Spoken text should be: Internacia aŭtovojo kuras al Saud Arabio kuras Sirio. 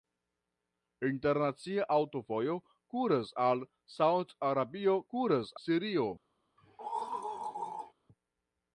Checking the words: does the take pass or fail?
pass